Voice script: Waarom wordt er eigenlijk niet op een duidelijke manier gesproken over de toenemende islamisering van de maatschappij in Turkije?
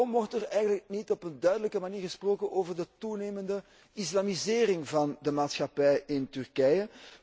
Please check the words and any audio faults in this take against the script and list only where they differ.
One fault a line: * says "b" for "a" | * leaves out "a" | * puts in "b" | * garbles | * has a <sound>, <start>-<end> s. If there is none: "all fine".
all fine